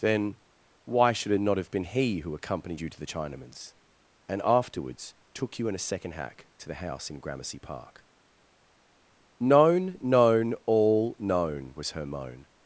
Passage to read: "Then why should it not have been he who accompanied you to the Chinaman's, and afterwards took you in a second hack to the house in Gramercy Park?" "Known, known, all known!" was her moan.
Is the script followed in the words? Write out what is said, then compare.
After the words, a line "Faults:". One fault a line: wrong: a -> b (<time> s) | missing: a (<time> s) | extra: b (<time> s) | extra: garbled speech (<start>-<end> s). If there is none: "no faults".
"Then why should it not have been he who accompanied you to the Chinaman's, and afterwards took you in a second hack to the house in Gramercy Park?" "Known, known, all known!" was her moan.
Faults:
no faults